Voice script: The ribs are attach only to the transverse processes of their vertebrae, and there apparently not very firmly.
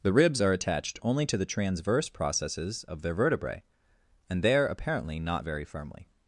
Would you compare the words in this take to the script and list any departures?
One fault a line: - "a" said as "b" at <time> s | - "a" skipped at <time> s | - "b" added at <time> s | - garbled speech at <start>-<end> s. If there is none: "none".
- "attach" said as "attached" at 0.5 s